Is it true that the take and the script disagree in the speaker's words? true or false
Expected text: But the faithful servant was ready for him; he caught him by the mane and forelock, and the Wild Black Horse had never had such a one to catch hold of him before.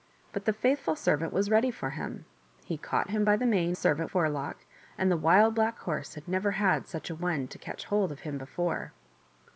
true